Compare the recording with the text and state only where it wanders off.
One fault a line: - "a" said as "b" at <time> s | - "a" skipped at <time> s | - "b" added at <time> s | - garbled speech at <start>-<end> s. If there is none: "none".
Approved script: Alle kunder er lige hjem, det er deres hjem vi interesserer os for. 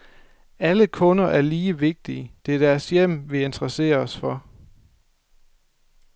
- "hjem" said as "vigtige" at 1.8 s